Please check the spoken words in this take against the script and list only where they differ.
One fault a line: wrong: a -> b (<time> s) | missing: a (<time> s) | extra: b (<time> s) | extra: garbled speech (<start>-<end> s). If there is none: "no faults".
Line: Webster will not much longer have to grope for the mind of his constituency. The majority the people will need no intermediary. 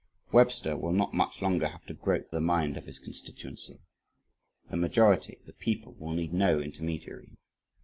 missing: for (2.4 s)